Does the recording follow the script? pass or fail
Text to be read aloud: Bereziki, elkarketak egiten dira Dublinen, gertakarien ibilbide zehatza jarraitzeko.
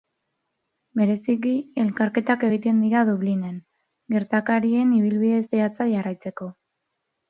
pass